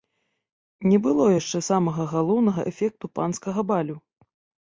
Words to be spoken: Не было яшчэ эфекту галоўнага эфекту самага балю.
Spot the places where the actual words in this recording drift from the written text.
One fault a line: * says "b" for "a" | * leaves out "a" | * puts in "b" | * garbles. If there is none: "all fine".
* says "самага" for "эфекту"
* says "панскага" for "самага"